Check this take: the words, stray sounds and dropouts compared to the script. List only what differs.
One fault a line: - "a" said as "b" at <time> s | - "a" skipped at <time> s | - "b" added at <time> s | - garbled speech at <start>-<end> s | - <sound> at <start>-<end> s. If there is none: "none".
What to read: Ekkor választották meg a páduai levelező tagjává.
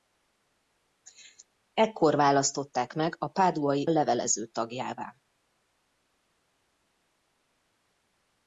none